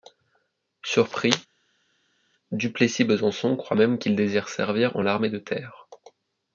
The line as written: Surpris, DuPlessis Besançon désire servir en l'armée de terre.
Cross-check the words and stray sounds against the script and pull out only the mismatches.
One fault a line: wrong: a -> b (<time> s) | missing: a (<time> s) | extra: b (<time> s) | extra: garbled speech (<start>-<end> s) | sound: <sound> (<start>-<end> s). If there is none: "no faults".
extra: croit même qu'il (3.6 s)